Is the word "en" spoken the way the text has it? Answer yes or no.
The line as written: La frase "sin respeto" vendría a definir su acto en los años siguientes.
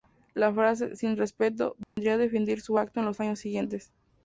yes